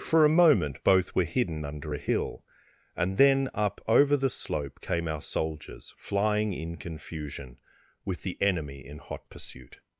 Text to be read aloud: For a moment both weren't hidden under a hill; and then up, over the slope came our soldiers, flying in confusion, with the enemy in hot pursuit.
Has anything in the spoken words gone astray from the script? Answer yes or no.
yes